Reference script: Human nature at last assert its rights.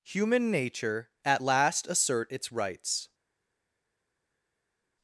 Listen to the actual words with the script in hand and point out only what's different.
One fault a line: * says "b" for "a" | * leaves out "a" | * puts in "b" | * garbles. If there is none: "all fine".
all fine